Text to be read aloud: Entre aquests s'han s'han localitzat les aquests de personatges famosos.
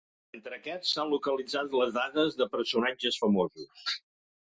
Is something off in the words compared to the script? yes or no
yes